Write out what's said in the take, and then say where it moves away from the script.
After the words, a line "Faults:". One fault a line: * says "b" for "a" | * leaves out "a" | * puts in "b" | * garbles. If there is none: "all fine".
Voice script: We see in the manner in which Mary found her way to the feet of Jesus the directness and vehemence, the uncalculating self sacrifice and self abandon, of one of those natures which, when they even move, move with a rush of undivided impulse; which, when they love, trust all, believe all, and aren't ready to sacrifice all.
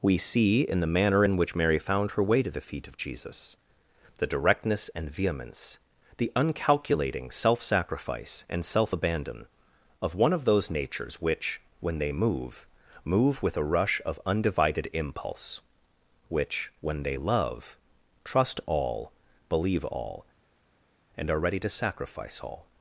We see in the manner in which Mary found her way to the feet of Jesus the directness and vehemence, the uncalculating self sacrifice and self abandon, of one of those natures which, when they move, move with a rush of undivided impulse; which, when they love, trust all, believe all, and are ready to sacrifice all.
Faults:
* leaves out "even"
* says "are" for "aren't"